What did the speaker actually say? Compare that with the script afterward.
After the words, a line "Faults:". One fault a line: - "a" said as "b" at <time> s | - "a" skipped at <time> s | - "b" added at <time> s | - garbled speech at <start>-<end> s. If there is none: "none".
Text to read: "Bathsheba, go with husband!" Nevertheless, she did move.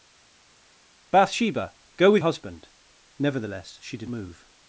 "Bathsheba, go with husband!" Nevertheless, she did move.
Faults:
none